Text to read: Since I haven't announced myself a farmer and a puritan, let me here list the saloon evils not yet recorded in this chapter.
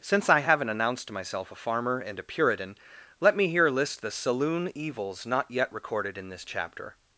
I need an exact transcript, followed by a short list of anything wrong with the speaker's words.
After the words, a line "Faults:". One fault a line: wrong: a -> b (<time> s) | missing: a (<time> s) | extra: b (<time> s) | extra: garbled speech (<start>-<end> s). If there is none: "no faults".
Since I haven't announced myself a farmer and a puritan, let me here list the saloon evils not yet recorded in this chapter.
Faults:
no faults